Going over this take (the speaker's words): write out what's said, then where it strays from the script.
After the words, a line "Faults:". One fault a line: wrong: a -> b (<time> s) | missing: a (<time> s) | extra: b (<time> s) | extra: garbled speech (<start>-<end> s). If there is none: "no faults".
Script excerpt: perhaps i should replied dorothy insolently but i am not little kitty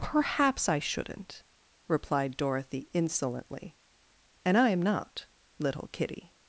perhaps i shouldn't replied dorothy insolently and i am not little kitty
Faults:
wrong: should -> shouldn't (0.8 s)
wrong: but -> and (4.4 s)